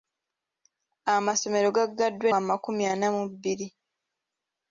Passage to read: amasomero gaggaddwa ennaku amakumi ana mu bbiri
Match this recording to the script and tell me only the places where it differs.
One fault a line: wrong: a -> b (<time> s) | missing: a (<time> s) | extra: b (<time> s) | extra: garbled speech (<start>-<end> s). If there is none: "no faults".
missing: ennaku (2.3 s)